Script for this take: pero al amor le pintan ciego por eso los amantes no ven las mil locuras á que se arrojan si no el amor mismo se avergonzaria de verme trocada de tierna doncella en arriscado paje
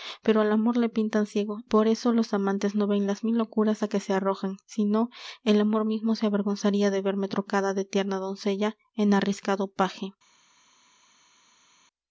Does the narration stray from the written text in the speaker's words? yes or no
no